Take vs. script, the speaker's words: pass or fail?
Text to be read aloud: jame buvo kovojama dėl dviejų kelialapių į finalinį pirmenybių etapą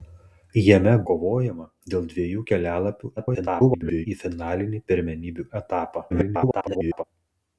fail